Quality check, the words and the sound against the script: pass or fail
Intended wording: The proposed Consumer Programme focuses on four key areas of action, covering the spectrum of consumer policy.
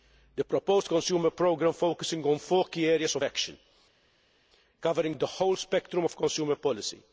fail